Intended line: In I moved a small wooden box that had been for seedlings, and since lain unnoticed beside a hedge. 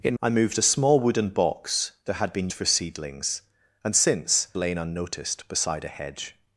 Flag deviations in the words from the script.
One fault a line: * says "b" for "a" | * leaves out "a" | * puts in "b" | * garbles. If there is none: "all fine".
all fine